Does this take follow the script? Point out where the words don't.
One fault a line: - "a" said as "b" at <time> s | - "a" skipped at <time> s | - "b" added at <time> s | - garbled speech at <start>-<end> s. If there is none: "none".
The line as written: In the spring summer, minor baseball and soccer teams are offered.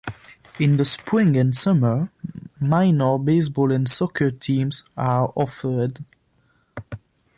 - "and" added at 1.4 s